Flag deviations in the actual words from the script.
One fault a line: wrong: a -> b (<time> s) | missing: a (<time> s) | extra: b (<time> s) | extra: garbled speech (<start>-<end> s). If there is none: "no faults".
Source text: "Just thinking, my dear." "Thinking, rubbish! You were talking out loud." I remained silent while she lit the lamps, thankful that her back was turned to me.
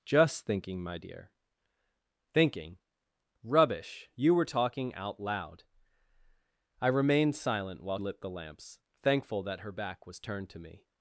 missing: she (8.0 s)